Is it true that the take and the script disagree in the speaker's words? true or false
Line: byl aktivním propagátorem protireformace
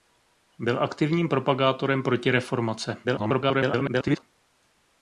true